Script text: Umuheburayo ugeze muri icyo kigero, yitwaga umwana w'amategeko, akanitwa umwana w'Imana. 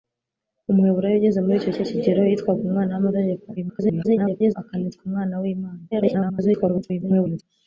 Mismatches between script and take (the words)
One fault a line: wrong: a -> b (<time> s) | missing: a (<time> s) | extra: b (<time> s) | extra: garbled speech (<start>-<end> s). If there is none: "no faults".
extra: icyo (1.7 s)
extra: garbled speech (3.6-4.5 s)
extra: garbled speech (5.9-7.4 s)